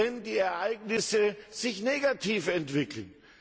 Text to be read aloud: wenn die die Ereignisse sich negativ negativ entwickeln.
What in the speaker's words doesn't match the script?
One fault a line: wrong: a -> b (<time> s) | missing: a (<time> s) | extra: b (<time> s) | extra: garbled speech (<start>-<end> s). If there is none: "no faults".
missing: die (0.4 s)
missing: negativ (2.5 s)